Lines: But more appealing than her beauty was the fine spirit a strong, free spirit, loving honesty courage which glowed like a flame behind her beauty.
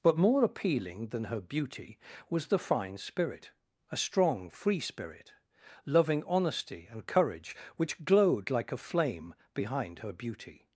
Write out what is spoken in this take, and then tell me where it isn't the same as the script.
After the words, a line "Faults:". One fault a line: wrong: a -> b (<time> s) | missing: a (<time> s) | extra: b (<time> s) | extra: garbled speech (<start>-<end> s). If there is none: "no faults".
But more appealing than her beauty was the fine spirit a strong, free spirit, loving honesty and courage which glowed like a flame behind her beauty.
Faults:
extra: and (6.9 s)